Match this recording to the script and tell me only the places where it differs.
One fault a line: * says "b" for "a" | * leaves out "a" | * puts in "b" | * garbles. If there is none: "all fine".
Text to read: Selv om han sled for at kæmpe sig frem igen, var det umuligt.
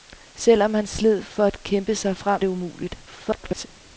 * leaves out "igen var"
* garbles